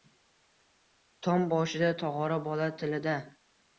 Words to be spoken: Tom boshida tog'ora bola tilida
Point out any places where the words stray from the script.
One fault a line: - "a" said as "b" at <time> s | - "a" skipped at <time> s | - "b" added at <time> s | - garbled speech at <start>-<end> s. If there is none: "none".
none